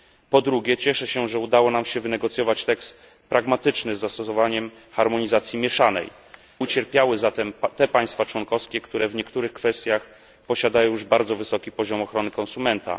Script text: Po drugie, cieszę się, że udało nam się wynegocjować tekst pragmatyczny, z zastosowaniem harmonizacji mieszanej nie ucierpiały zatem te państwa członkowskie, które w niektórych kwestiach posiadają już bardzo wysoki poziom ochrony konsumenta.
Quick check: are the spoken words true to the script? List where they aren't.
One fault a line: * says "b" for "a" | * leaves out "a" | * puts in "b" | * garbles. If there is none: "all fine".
* leaves out "nie"